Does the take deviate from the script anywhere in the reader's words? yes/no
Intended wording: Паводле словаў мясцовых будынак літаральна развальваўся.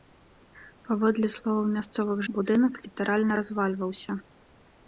no